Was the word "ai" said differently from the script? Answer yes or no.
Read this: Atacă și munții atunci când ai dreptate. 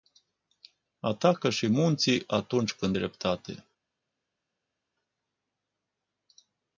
yes